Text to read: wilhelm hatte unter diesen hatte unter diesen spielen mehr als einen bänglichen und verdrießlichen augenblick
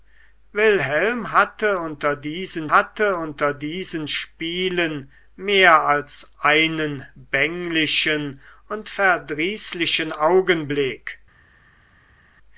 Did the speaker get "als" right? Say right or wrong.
right